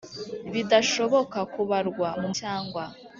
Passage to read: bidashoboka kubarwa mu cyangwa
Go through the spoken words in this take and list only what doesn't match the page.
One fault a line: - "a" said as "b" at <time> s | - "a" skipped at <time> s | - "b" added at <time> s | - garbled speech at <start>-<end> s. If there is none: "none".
none